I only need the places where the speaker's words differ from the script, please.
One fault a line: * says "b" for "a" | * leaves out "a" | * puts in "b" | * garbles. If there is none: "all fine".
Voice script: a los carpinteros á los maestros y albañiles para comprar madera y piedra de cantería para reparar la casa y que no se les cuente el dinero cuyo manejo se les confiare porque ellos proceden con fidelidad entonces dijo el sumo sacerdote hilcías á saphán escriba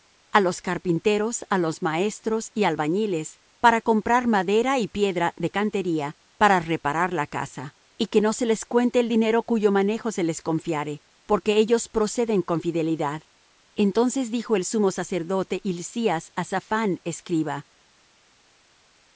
all fine